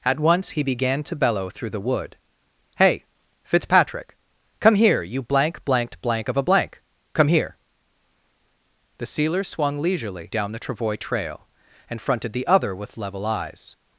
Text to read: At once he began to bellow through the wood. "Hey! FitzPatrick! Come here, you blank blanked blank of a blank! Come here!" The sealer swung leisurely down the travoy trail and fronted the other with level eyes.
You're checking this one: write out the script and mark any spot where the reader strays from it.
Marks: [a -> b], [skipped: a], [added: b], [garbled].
At once he began to bellow through the wood. "Hey! FitzPatrick! Come here, you blank blanked blank of a blank! Come here!" The sealer swung leisurely down the travoy trail and fronted the other with level eyes.